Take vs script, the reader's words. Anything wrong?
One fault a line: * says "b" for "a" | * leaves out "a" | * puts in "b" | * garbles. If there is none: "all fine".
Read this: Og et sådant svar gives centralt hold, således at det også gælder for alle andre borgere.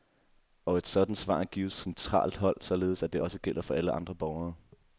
all fine